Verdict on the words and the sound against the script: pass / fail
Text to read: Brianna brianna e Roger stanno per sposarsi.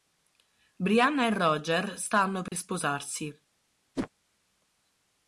fail